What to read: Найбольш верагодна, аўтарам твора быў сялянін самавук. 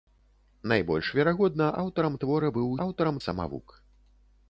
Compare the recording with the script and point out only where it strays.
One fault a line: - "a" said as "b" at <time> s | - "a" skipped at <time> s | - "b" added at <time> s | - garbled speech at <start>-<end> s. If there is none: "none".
- "сялянін" said as "аўтарам" at 2.9 s